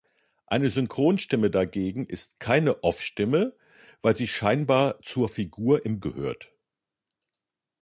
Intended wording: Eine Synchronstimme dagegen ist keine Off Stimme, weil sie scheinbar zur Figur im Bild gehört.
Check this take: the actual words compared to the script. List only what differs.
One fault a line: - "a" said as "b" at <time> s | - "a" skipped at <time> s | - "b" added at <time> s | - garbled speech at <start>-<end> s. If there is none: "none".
- "Bild" skipped at 6.0 s